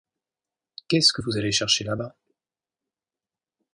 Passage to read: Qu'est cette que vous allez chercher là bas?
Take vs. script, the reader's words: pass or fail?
fail